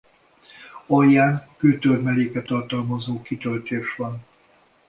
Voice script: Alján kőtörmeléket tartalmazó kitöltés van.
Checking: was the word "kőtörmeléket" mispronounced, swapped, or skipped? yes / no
no